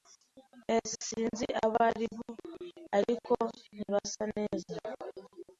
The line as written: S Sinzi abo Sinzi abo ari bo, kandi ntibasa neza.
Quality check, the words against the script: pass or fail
fail